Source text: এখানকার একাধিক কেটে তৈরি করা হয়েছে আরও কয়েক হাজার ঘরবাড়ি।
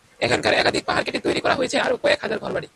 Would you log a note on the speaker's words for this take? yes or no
yes